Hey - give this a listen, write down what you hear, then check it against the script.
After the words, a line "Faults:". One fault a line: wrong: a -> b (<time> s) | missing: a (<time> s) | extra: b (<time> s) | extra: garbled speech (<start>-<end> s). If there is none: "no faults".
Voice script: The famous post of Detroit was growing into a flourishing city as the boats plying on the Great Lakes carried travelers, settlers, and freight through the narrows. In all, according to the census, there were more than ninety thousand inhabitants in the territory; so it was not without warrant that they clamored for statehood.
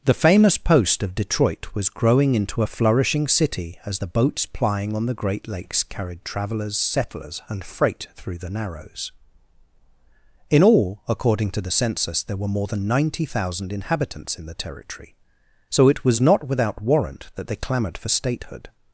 The famous post of Detroit was growing into a flourishing city as the boats plying on the Great Lakes carried travelers, settlers, and freight through the narrows. In all, according to the census, there were more than ninety thousand inhabitants in the territory; so it was not without warrant that they clamored for statehood.
Faults:
no faults